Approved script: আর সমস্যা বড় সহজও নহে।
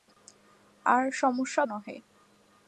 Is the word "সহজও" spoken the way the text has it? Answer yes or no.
no